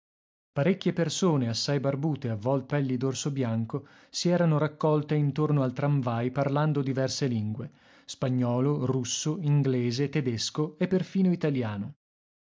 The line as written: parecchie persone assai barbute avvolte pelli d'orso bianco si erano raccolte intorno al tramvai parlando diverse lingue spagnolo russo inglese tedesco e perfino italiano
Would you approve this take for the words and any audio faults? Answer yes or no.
yes